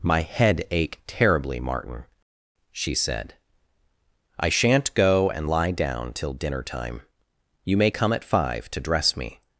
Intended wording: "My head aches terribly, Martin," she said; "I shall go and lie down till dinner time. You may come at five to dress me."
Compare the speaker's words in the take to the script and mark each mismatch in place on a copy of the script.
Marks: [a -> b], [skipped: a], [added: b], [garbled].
"My head [aches -> ache] terribly, Martin," she said; "I [shall -> shan't] go and lie down till dinner time. You may come at five to dress me."